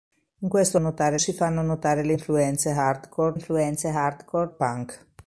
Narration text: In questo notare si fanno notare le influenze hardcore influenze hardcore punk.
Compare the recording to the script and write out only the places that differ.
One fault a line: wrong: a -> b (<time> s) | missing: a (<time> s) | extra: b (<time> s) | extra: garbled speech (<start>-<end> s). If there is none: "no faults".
no faults